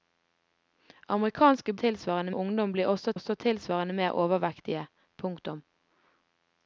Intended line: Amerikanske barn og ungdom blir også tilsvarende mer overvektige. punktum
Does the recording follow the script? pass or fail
fail